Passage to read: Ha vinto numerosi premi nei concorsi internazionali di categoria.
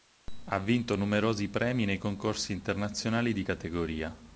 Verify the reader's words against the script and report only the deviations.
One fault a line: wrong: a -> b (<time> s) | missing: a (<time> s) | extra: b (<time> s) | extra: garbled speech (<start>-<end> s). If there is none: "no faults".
no faults